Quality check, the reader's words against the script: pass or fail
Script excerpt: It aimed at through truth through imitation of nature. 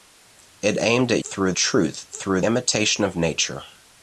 pass